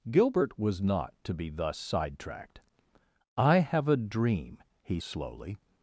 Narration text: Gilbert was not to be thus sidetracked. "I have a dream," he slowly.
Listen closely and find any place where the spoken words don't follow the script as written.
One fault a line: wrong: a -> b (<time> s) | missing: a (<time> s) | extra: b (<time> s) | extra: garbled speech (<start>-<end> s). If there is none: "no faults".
no faults